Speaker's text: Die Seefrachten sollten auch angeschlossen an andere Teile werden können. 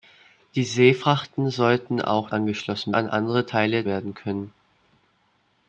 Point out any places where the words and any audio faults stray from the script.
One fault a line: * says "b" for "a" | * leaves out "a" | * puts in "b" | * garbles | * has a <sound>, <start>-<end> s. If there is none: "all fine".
all fine